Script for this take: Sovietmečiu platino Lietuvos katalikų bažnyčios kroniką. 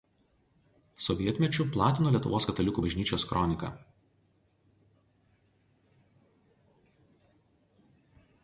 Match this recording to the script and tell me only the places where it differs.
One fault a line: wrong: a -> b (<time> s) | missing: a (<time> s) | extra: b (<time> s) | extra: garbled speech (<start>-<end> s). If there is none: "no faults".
no faults